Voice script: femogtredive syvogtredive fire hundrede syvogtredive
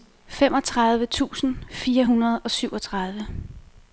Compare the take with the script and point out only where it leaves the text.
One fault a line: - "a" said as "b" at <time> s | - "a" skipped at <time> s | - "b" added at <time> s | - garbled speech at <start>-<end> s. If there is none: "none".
- "syvogtredive" said as "tusind" at 1.1 s
- "og" added at 2.4 s